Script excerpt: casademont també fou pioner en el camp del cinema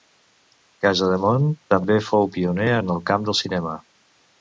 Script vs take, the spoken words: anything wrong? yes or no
no